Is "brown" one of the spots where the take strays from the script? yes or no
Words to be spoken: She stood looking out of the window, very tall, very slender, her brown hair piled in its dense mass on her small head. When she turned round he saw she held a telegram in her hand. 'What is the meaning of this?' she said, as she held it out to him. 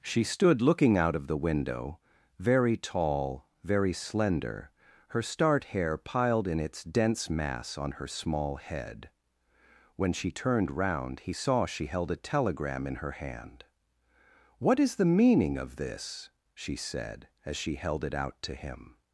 yes